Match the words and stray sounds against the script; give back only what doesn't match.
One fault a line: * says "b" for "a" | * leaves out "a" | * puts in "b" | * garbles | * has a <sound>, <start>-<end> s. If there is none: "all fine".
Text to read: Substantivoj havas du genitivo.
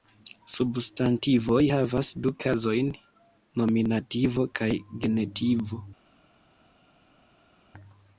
* puts in "kazojn nominativo kaj"